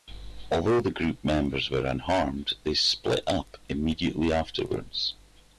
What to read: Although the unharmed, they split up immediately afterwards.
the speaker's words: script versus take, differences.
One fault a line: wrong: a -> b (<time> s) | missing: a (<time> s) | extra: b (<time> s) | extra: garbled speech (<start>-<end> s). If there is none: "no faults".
extra: group members were (0.9 s)